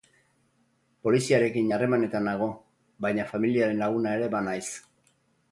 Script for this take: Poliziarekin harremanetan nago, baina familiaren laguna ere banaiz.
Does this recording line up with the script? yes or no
yes